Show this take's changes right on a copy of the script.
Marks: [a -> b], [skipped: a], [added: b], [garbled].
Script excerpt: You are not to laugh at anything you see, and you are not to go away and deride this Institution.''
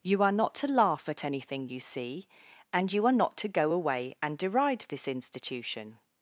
You are not to laugh at anything you see, and you are not to go away and deride this Institution.''